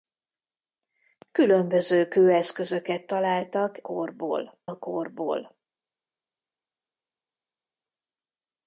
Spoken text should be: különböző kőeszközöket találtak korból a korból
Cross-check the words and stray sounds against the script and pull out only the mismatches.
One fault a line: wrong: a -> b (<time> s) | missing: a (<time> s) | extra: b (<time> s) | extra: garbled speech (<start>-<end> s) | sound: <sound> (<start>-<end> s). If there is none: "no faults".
no faults